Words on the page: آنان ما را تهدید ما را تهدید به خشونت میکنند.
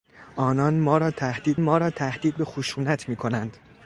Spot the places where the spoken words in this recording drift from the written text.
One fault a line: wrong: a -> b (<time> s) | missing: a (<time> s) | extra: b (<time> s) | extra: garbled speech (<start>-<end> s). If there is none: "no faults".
no faults